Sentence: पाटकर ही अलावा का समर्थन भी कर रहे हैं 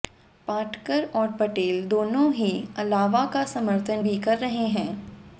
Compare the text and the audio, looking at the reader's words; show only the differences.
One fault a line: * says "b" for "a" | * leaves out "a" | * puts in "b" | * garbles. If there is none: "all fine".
* puts in "और पटेल दोनों"